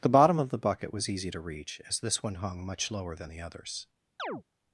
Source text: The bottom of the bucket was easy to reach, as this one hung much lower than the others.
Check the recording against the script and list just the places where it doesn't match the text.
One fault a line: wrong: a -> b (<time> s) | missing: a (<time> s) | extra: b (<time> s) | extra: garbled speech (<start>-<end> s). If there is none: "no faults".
no faults